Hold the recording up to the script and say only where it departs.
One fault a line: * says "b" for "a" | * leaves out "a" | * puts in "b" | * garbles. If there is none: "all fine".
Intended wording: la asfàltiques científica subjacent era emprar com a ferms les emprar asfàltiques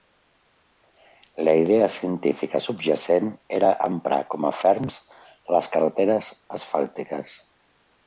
* says "idea" for "asfàltiques"
* says "carreteres" for "emprar"